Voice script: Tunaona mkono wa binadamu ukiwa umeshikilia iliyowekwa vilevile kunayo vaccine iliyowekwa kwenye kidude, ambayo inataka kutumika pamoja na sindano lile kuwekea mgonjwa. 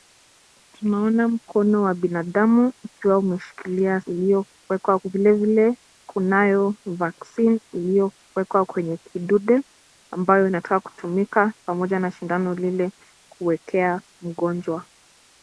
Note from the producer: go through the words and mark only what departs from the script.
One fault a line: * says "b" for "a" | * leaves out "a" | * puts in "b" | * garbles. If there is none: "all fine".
all fine